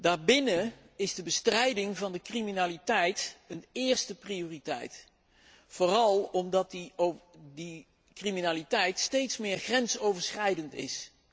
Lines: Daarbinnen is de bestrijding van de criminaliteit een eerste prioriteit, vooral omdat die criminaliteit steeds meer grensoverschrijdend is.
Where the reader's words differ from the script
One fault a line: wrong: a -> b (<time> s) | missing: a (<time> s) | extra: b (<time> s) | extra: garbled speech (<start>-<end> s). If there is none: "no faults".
no faults